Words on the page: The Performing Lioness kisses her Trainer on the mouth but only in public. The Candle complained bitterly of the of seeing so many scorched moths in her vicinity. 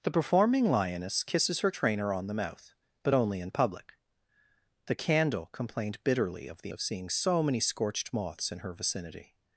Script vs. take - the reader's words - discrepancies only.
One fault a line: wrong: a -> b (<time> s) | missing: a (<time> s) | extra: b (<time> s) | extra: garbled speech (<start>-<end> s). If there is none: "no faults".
no faults